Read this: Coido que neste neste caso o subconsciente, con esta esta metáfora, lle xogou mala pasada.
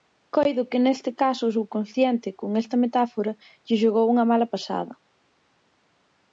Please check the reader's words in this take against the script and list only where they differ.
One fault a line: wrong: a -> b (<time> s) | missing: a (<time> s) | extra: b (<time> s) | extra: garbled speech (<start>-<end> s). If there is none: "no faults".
missing: neste (1.1 s)
missing: esta (2.8 s)
extra: unha (4.1 s)